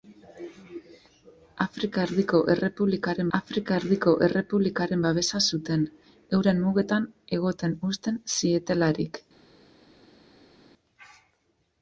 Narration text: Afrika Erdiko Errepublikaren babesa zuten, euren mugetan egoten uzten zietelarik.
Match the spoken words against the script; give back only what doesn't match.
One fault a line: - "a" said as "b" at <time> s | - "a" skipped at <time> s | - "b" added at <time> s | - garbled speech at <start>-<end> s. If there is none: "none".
- "afrika Erdiko Errepublikaren" added at 3.4 s